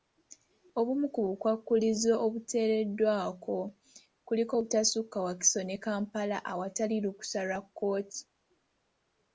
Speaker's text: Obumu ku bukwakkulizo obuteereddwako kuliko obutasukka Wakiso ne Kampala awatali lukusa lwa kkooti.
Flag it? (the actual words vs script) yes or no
no